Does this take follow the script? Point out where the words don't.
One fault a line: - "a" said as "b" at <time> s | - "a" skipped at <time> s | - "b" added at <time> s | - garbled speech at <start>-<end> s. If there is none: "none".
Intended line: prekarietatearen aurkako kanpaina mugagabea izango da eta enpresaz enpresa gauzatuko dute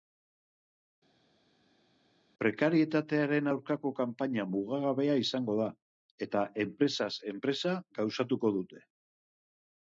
none